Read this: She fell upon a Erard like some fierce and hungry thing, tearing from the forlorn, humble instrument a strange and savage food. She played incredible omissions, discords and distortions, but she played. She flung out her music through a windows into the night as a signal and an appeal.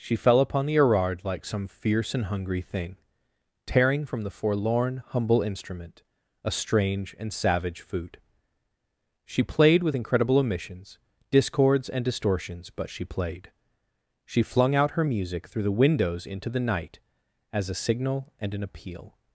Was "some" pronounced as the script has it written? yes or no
yes